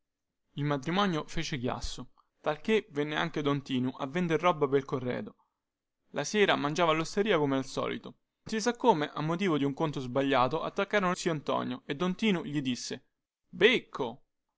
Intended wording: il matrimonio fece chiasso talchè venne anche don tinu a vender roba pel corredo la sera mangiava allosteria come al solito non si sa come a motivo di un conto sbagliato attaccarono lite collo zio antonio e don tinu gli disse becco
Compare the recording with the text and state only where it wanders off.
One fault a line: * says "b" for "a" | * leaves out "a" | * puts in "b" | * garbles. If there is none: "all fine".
* leaves out "non"
* leaves out "lite collo"